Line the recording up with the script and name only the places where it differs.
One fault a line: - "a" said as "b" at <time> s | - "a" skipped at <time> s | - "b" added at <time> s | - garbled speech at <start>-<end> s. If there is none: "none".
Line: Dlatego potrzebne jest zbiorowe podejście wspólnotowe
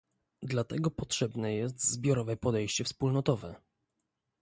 none